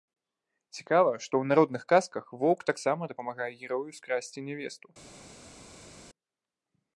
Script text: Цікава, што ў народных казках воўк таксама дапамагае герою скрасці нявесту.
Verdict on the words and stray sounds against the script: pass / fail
pass